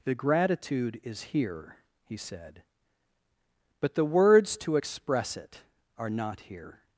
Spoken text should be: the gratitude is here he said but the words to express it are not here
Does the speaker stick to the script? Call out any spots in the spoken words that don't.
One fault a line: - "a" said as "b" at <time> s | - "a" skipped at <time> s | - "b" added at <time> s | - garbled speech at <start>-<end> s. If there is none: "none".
none